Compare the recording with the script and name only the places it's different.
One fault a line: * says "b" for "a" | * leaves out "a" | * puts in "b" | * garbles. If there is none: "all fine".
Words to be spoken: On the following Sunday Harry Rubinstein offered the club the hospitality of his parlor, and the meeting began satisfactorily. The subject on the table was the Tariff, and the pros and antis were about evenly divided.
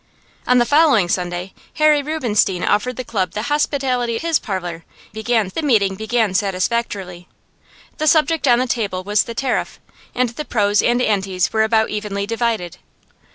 * leaves out "of"
* says "began" for "and"